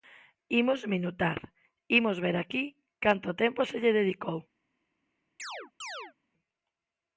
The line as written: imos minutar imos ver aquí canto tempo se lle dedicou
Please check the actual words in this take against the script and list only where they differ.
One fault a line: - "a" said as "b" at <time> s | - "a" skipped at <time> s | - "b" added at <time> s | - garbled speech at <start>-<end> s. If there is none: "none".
none